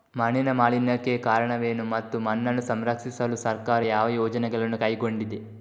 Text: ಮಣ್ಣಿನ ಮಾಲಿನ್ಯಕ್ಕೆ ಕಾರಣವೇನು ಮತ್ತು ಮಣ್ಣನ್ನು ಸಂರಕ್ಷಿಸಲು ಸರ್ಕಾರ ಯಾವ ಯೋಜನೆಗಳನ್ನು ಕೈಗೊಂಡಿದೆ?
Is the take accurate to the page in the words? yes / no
yes